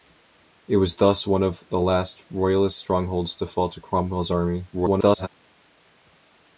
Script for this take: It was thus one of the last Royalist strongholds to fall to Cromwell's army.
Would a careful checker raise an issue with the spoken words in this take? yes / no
yes